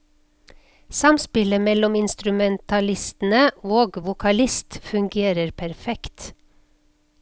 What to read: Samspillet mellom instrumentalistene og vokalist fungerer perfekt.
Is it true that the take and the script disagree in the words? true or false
false